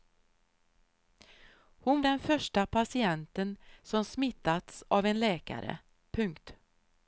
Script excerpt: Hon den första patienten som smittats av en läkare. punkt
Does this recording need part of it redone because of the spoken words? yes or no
no